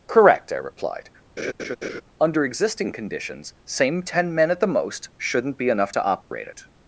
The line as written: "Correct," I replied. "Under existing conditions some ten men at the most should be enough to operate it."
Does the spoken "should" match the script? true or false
false